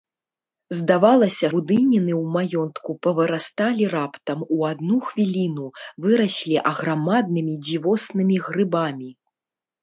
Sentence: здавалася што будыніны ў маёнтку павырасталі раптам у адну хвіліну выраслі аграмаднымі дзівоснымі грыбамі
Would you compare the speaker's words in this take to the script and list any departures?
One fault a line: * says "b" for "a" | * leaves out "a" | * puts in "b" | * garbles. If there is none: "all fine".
* leaves out "што"